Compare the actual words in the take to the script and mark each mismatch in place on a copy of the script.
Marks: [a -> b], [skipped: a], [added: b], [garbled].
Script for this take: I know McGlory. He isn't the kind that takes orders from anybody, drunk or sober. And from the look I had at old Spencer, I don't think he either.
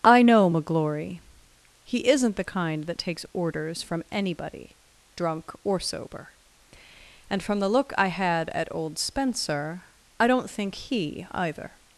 I know McGlory. He isn't the kind that takes orders from anybody, drunk or sober. And from the look I had at old Spencer, I don't think he either.